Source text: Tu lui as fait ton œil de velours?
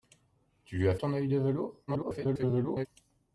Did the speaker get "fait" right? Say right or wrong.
wrong